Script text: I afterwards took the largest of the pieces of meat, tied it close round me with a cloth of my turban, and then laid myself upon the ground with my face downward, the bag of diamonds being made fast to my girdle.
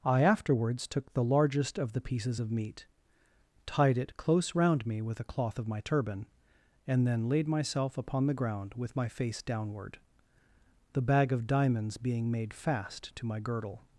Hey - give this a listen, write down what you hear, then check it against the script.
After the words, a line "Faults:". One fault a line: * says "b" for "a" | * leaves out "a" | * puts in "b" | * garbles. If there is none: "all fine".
I afterwards took the largest of the pieces of meat, tied it close round me with a cloth of my turban, and then laid myself upon the ground with my face downward, the bag of diamonds being made fast to my girdle.
Faults:
all fine